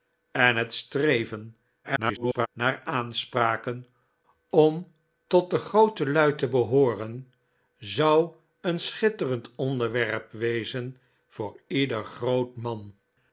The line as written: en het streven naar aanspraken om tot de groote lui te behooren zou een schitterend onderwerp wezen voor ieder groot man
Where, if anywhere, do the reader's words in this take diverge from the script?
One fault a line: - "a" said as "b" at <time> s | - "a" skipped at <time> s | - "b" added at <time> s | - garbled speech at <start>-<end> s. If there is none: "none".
- garbled speech at 1.8-2.5 s